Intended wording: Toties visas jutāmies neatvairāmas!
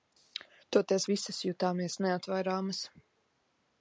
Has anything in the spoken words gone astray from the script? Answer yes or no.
no